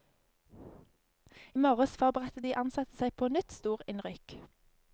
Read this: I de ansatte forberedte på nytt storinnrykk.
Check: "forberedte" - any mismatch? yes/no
yes